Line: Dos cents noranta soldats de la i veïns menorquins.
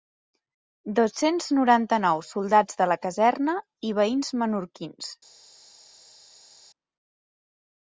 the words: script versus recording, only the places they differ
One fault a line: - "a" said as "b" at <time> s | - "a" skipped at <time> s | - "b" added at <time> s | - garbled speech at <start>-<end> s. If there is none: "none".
- "nou" added at 2.1 s
- "caserna" added at 3.0 s